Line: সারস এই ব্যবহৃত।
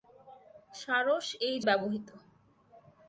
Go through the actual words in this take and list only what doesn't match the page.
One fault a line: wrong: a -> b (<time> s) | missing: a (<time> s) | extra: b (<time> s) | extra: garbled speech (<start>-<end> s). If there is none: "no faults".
no faults